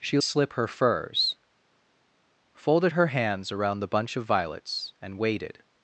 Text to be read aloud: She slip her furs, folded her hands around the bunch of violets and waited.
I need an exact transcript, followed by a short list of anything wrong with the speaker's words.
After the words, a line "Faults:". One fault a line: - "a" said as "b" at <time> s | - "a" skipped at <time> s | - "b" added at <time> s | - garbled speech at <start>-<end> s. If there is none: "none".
She slip her furs, folded her hands around the bunch of violets and waited.
Faults:
none